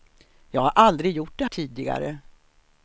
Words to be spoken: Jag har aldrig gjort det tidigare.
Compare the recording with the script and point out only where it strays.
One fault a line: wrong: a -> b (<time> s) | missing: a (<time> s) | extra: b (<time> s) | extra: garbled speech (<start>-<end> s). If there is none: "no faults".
no faults